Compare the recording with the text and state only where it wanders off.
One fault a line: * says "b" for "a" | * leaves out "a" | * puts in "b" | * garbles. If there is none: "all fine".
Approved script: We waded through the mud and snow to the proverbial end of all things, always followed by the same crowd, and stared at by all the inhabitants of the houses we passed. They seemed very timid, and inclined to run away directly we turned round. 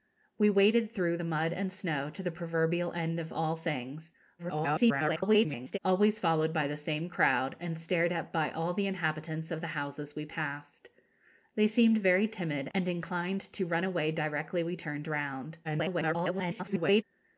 * garbles
* garbles